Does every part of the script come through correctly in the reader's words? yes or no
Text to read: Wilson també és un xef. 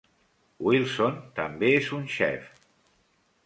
yes